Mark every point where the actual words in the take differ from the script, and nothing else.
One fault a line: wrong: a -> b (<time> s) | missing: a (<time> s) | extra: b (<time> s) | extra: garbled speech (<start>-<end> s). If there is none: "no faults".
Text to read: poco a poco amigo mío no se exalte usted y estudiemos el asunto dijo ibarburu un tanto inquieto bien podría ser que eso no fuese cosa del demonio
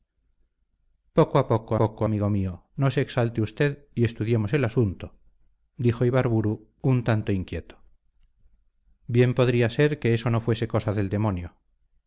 extra: poco (1.8 s)